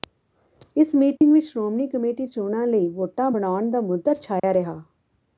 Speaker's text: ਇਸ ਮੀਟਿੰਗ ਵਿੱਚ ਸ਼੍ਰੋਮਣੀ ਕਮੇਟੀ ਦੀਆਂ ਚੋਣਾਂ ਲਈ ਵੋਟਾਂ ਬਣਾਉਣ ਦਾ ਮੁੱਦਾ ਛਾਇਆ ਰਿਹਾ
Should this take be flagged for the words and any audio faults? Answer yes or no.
yes